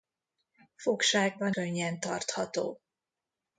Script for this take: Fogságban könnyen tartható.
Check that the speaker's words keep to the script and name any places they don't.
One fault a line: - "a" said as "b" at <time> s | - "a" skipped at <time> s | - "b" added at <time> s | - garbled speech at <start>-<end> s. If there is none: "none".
none